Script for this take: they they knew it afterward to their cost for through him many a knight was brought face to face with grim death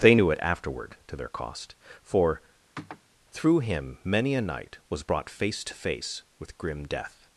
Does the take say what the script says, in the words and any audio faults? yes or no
no